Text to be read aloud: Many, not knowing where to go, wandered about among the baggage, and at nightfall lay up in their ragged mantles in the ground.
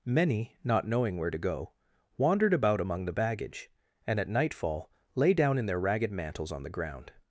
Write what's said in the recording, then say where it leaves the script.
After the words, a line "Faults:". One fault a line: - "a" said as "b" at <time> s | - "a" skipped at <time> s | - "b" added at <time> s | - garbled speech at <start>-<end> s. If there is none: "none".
Many, not knowing where to go, wandered about among the baggage, and at nightfall lay down in their ragged mantles on the ground.
Faults:
- "up" said as "down" at 5.3 s
- "in" said as "on" at 6.5 s